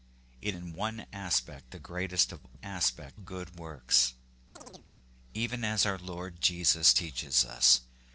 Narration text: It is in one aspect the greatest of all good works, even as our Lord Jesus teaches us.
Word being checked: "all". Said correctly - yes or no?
no